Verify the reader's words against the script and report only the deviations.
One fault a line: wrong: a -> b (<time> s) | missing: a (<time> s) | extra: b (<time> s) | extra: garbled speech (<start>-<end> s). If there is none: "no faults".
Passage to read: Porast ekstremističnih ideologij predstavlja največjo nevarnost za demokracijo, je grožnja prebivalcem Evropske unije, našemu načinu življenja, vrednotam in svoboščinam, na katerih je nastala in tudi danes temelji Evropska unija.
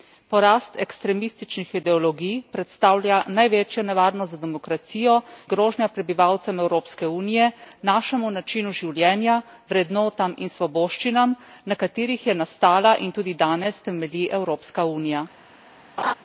missing: je (5.2 s)